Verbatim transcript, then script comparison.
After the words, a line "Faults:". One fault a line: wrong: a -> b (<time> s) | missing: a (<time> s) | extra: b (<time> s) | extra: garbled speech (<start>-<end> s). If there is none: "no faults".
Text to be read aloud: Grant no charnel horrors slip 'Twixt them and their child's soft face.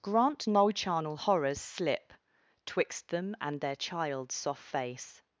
Grant no charnel horrors slip 'Twixt them and their child's soft face.
Faults:
no faults